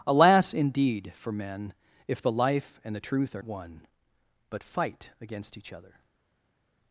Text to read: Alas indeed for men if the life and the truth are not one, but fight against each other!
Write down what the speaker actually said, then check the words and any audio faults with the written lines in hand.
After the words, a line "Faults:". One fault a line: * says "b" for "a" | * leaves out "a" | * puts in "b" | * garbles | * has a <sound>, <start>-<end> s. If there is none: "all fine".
Alas indeed for men if the life and the truth are one, but fight against each other!
Faults:
* leaves out "not"